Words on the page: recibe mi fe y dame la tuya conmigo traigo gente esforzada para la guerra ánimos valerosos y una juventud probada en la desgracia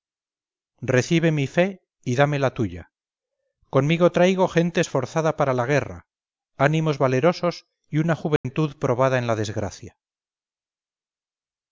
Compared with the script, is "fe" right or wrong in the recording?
right